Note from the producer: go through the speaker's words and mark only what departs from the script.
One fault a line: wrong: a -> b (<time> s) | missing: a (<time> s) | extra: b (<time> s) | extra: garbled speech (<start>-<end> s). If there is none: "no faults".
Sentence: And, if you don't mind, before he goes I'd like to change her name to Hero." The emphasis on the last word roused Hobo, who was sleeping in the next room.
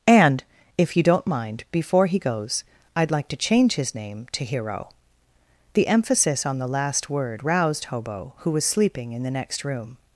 wrong: her -> his (3.8 s)